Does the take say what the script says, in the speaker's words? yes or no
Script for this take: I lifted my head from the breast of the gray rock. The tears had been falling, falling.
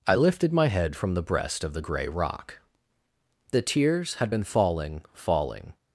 yes